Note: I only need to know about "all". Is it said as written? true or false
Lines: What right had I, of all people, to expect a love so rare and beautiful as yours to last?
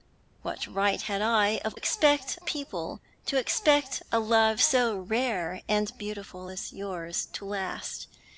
false